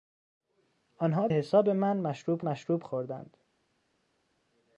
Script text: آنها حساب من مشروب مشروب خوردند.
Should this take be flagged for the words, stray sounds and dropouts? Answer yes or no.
no